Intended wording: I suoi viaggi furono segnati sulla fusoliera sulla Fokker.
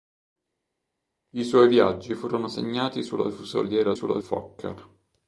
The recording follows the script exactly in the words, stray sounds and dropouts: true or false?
true